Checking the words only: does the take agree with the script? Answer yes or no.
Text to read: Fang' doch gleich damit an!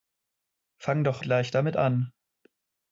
yes